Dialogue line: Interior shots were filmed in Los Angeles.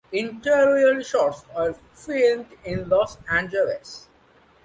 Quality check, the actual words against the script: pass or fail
pass